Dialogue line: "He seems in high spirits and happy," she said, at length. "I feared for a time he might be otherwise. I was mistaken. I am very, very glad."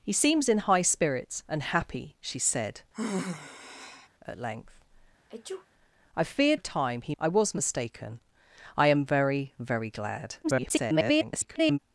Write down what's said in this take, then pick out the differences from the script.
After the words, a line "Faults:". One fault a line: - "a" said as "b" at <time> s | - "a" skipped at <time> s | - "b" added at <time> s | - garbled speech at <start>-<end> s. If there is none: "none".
"He seems in high spirits and happy," she said, at length. "I feared a time he. I was mistaken. I am very, very glad." [garbled]
Faults:
- "for" skipped at 6.6 s
- "might be otherwise" skipped at 7.1 s
- garbled speech at 10.4-11.8 s